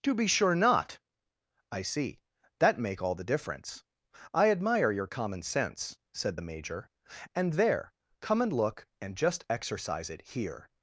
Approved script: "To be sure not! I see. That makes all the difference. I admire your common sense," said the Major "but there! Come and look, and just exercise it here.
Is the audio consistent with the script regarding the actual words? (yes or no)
no